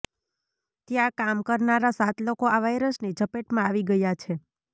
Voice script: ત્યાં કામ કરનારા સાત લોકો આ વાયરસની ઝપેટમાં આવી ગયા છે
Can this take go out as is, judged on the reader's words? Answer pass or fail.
pass